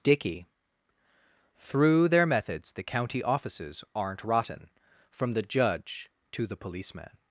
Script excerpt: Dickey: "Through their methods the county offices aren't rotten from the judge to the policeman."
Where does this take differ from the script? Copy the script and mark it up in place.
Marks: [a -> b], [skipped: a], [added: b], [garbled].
Dickey: "Through their methods the county offices aren't rotten from the judge to the policeman."